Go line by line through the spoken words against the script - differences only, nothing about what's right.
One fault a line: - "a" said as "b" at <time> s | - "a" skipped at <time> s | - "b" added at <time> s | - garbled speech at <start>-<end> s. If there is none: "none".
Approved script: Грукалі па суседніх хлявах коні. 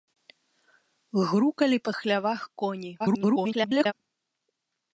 - "суседніх" skipped at 1.9 s
- garbled speech at 3.0-3.9 s